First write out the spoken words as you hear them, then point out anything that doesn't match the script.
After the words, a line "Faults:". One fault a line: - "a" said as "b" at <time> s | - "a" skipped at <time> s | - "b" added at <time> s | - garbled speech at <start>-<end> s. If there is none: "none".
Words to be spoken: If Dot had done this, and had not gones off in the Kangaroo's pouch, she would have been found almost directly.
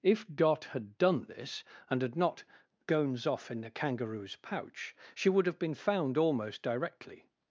If Dot had done this, and had not gones off in the Kangaroo's pouch, she would have been found almost directly.
Faults:
none